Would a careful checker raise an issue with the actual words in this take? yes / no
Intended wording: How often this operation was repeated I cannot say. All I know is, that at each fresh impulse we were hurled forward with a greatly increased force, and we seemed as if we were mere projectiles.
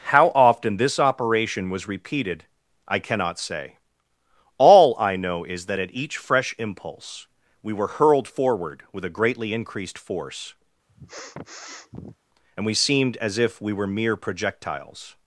no